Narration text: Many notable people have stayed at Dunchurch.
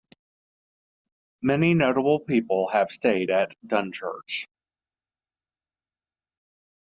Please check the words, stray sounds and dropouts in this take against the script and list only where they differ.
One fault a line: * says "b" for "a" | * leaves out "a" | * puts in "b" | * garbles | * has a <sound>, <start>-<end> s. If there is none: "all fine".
all fine